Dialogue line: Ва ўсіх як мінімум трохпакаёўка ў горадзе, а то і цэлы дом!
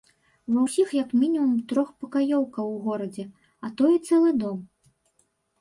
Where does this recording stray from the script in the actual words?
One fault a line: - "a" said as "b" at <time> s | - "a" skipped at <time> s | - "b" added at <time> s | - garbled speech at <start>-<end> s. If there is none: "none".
none